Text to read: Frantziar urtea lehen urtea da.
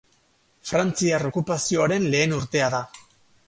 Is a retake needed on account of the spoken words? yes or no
yes